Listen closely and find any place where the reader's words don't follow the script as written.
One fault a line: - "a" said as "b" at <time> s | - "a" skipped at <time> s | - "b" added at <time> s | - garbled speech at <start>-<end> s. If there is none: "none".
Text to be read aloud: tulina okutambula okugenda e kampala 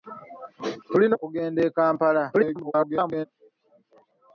- "okutambula" skipped at 1.1 s
- garbled speech at 2.3-3.3 s